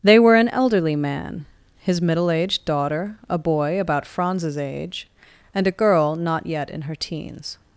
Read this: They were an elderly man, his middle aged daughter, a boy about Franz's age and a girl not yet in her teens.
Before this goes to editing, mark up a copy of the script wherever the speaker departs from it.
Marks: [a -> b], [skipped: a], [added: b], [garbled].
They were an elderly man, his middle aged daughter, a boy about Franz's age and a girl not yet in her teens.